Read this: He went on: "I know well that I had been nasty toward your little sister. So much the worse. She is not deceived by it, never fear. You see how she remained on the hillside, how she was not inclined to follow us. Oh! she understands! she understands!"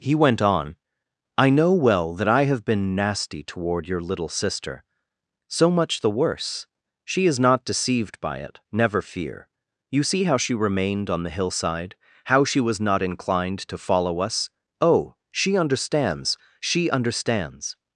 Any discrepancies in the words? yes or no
yes